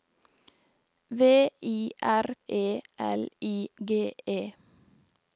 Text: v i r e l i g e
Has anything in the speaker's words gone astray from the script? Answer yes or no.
no